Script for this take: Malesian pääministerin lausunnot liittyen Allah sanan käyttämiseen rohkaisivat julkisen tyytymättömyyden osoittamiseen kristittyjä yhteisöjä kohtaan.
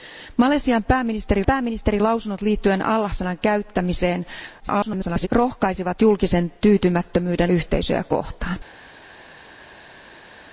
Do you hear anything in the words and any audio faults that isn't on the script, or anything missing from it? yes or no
yes